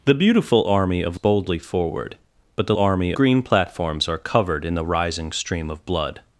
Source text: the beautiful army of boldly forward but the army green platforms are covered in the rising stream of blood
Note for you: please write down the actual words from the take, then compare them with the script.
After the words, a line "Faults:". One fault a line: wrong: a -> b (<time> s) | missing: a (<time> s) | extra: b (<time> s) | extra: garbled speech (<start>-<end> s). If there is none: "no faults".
the beautiful army of boldly forward but the army green platforms are covered in the rising stream of blood
Faults:
no faults